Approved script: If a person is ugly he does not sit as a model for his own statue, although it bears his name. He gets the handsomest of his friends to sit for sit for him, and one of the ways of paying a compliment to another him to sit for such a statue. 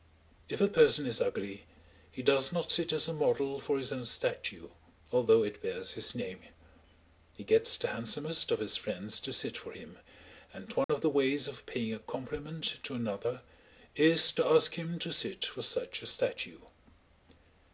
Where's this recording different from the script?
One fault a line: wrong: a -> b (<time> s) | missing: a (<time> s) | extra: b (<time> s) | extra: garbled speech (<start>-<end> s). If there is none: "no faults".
missing: sit for (9.7 s)
extra: is to ask (14.0 s)